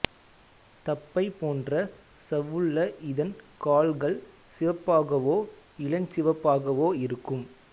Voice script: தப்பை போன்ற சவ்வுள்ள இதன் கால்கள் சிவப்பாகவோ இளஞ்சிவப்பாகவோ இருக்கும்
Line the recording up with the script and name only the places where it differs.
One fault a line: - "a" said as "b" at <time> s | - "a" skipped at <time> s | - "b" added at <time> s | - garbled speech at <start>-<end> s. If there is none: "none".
none